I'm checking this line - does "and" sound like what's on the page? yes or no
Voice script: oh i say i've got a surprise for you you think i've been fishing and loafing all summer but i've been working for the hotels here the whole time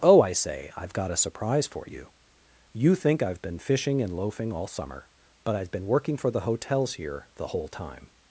yes